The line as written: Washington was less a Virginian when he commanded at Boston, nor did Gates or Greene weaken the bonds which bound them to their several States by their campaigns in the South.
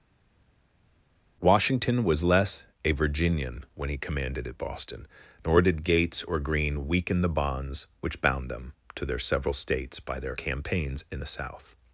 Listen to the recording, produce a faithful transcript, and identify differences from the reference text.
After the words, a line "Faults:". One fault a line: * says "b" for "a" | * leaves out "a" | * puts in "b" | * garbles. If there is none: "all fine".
Washington was less a Virginian when he commanded at Boston, nor did Gates or Greene weaken the bonds which bound them to their several States by their campaigns in the South.
Faults:
all fine